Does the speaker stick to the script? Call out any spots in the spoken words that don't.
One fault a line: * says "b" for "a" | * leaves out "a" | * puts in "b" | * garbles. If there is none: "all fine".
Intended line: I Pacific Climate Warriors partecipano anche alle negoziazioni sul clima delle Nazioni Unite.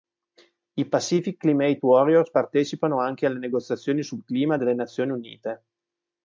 all fine